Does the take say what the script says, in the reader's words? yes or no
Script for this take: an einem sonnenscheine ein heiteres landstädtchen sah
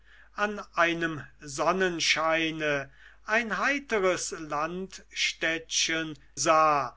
yes